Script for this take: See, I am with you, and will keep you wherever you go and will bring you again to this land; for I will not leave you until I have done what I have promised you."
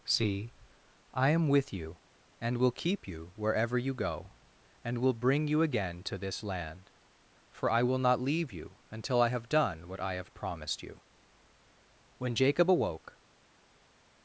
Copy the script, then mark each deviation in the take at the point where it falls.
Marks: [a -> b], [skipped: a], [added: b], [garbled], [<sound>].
See, I am with you, and will keep you wherever you go and will bring you again to this land; for I will not leave you until I have done what I have promised you." [added: When Jacob awoke]